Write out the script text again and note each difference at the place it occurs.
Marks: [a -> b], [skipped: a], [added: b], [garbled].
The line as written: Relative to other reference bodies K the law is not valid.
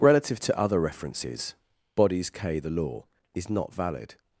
Relative to other [reference -> references] bodies K the law is not valid.